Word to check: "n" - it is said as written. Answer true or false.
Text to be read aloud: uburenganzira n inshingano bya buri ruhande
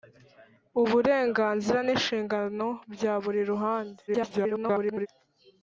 true